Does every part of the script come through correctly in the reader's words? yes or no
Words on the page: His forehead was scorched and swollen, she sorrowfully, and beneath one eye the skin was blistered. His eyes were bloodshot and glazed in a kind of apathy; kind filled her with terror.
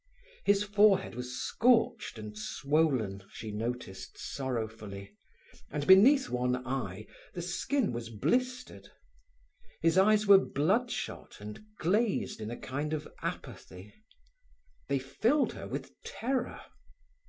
no